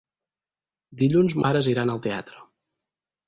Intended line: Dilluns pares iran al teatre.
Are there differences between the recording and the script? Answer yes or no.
no